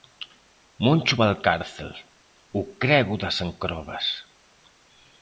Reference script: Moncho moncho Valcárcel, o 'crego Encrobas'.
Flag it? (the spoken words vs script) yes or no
yes